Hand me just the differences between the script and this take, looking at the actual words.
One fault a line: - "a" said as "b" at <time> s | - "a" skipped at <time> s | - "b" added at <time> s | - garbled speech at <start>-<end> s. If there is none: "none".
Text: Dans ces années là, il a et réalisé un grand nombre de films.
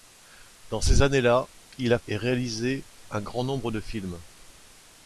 none